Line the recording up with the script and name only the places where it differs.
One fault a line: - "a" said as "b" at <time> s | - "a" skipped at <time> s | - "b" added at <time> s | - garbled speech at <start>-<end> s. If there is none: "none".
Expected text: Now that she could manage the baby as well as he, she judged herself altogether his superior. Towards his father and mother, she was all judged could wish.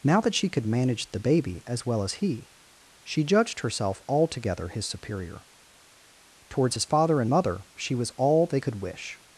- "judged" said as "they" at 8.5 s